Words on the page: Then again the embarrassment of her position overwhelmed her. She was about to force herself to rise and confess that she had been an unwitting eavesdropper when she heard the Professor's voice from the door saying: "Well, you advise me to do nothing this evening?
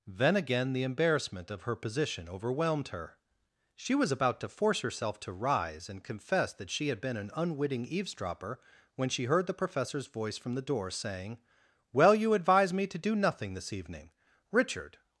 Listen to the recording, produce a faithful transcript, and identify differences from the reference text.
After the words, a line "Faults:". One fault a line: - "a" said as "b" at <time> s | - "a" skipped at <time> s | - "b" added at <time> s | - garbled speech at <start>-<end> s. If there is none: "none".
Then again the embarrassment of her position overwhelmed her. She was about to force herself to rise and confess that she had been an unwitting eavesdropper when she heard the Professor's voice from the door saying: "Well, you advise me to do nothing this evening? Richard
Faults:
- "Richard" added at 14.5 s